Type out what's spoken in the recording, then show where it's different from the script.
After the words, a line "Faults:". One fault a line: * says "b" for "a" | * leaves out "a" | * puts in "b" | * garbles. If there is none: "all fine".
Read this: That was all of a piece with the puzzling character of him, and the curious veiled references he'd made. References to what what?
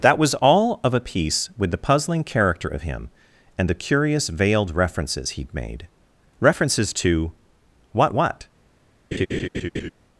That was all of a piece with the puzzling character of him, and the curious veiled references he'd made. References to what what?
Faults:
all fine